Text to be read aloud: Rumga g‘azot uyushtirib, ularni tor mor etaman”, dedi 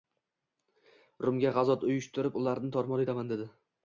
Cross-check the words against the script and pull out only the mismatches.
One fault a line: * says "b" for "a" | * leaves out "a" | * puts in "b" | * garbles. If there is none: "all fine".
all fine